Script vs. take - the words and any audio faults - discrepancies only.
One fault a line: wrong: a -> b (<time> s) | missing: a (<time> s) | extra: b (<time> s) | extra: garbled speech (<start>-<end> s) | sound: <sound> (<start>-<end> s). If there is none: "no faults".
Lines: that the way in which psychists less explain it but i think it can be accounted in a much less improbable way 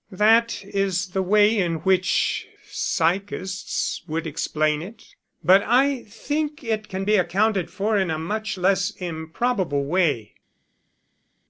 extra: is (0.7 s)
wrong: less -> would (4.1 s)
extra: for (7.7 s)